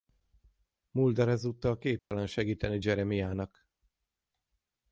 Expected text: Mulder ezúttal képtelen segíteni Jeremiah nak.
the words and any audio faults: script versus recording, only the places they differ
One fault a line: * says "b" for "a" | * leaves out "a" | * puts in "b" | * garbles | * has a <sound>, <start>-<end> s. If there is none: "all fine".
* has a dropout, 2.0-2.1 s